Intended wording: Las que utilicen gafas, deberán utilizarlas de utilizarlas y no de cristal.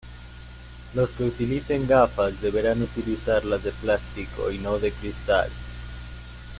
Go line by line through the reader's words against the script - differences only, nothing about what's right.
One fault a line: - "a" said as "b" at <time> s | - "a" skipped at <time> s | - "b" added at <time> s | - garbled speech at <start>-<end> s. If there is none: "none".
- "Las" said as "Los" at 0.9 s
- "utilizarlas" said as "plástico" at 3.7 s